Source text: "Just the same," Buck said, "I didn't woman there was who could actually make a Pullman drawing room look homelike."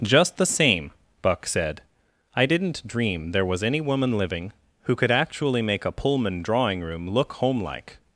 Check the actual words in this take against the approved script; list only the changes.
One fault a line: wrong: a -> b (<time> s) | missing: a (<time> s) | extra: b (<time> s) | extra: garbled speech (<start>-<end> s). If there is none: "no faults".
wrong: woman -> dream (2.9 s)
extra: any woman living (3.6 s)